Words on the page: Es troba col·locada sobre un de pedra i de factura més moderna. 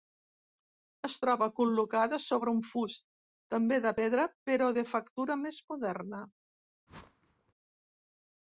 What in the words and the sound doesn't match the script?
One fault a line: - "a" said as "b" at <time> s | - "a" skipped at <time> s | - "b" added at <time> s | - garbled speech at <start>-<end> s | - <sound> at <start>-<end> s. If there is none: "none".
- "fust també" added at 2.7 s
- "i" said as "però" at 4.5 s
- whoosh at 6.9-7.5 s